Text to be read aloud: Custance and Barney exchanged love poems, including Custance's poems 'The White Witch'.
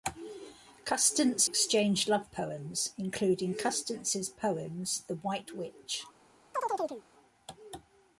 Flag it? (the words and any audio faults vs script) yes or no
yes